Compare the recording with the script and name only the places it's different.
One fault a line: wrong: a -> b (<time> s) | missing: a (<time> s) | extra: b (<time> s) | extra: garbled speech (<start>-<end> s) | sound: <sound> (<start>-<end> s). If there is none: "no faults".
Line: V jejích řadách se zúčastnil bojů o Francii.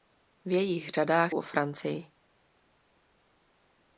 missing: se zúčastnil bojů (1.4 s)